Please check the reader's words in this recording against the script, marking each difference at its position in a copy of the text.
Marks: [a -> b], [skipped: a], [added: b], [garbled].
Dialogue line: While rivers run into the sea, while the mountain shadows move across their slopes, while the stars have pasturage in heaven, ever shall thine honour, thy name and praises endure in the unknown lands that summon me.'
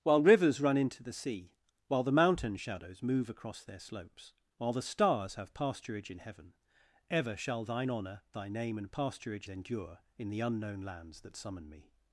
While rivers run into the sea, while the mountain shadows move across their slopes, while the stars have pasturage in heaven, ever shall thine honour, thy name and [praises -> pasturage] endure in the unknown lands that summon me.'